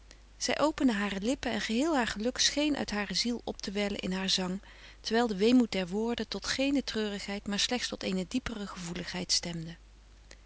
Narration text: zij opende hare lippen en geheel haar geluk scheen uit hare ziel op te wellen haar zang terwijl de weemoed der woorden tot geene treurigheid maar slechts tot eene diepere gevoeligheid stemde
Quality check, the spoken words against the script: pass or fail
fail